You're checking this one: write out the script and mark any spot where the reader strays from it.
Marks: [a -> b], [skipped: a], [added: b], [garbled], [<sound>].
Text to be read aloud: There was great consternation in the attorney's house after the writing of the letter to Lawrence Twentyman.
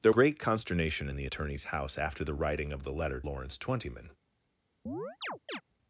There [skipped: was] great consternation in the attorney's house after the writing of the letter [skipped: to] Lawrence Twentyman. [chirp]